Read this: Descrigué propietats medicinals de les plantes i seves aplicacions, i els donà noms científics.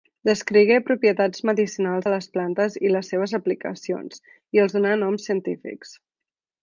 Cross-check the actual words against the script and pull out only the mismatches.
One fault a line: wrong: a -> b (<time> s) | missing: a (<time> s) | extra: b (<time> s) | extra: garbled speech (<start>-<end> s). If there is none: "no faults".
extra: les (3.0 s)